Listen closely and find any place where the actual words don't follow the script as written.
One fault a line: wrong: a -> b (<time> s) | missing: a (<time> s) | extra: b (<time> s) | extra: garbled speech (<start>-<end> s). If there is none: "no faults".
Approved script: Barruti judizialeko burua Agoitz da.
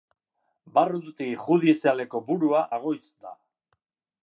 no faults